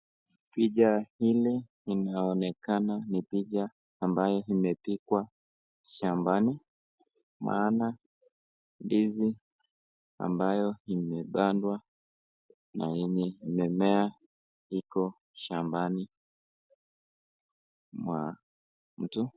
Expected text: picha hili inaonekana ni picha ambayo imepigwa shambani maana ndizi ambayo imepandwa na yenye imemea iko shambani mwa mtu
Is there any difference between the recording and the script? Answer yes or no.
no